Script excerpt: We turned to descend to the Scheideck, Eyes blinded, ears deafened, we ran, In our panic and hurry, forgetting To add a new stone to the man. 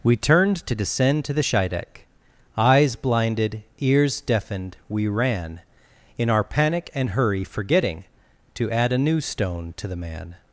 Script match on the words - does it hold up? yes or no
yes